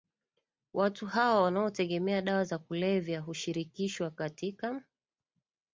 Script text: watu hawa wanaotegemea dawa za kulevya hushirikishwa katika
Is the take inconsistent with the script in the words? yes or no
no